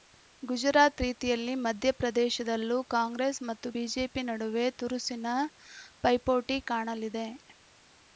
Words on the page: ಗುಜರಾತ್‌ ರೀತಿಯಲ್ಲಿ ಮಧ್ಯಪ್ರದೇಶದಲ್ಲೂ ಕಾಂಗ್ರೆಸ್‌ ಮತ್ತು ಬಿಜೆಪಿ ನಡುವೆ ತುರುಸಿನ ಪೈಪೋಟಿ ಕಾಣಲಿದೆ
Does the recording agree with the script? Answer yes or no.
yes